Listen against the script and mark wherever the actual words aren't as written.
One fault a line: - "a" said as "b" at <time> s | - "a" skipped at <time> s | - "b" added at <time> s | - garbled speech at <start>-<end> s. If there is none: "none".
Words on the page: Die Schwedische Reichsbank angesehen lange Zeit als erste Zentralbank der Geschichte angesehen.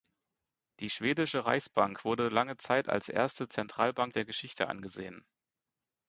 - "angesehen" said as "wurde" at 2.0 s